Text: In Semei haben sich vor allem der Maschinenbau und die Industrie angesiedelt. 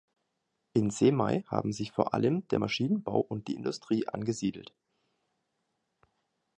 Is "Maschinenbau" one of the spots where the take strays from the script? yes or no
no